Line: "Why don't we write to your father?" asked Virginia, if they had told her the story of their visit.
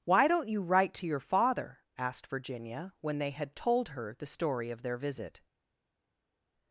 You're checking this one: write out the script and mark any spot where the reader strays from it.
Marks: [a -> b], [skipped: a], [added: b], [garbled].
"Why don't [we -> you] write to your father?" asked Virginia, [if -> when] they had told her the story of their visit.